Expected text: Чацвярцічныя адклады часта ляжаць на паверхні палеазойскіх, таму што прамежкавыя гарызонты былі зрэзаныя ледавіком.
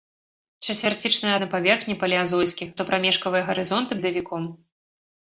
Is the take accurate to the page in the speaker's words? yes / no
no